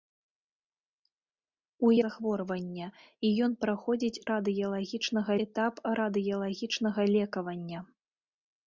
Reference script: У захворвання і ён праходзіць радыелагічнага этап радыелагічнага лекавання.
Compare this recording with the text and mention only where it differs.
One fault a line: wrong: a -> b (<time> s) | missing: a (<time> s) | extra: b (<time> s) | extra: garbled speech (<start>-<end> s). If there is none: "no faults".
no faults